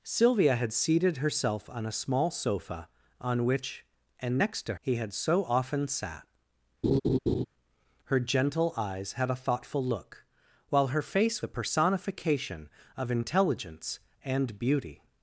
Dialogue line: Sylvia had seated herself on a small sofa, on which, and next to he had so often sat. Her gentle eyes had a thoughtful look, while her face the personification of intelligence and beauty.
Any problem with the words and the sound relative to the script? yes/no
yes